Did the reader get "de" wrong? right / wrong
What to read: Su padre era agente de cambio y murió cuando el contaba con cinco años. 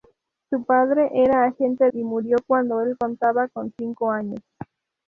wrong